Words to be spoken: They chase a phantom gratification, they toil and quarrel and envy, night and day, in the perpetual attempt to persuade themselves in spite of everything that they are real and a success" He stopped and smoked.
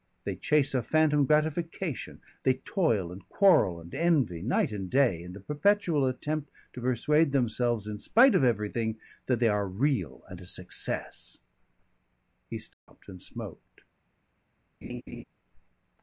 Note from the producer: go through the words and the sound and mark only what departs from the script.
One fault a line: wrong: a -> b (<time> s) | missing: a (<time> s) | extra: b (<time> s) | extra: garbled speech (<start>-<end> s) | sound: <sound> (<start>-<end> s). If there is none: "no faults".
sound: dropout (12.7-12.9 s)
sound: laugh (14.8-15.2 s)